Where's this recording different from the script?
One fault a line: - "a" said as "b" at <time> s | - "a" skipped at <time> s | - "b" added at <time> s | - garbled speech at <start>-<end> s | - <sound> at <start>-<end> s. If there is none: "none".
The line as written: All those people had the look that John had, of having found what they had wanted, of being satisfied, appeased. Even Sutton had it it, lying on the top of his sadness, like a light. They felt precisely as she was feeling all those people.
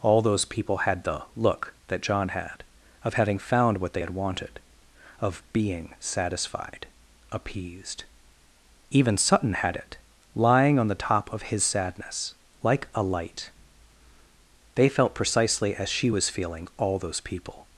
- "it" skipped at 10.0 s